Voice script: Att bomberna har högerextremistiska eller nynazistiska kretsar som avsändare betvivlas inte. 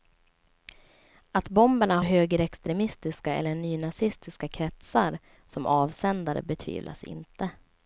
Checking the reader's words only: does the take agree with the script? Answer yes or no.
no